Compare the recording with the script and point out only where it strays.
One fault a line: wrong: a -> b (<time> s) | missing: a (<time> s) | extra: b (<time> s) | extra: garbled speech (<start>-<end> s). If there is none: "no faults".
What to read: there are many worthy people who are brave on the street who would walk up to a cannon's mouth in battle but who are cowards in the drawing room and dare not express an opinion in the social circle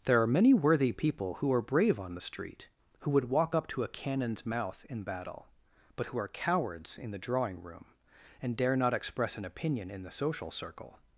no faults